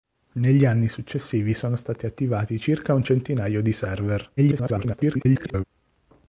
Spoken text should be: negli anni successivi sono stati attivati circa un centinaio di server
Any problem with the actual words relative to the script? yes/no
yes